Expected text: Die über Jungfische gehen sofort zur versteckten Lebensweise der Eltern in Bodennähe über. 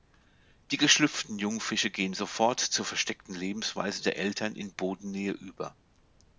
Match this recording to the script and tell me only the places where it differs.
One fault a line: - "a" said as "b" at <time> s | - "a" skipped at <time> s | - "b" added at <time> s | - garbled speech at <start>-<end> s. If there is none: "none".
- "über" said as "geschlüpften" at 0.8 s